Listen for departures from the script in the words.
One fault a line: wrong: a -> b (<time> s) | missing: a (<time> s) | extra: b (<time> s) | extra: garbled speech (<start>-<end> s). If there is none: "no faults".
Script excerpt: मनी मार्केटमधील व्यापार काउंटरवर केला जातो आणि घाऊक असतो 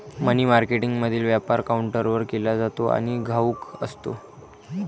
no faults